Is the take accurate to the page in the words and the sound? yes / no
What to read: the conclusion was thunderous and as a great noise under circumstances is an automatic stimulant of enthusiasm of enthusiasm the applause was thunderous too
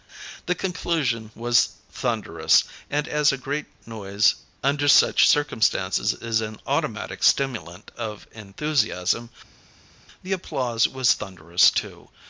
no